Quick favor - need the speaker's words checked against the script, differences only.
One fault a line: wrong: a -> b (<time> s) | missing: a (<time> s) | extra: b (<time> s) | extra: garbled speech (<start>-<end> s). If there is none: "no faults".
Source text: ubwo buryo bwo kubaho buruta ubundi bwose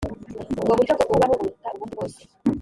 no faults